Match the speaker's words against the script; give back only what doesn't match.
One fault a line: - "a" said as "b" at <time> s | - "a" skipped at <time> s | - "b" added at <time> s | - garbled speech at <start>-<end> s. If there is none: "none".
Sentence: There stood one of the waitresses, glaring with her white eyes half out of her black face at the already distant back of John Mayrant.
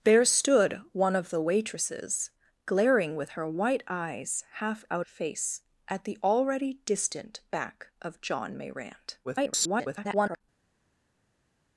- "of her black" skipped at 5.0 s
- garbled speech at 9.2-10.4 s